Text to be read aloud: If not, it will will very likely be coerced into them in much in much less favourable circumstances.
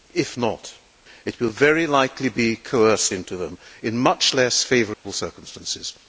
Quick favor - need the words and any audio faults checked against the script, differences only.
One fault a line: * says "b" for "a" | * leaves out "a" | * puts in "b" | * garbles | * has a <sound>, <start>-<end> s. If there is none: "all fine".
* leaves out "will"
* leaves out "in much"
* has a dropout, 4.9-5.0 s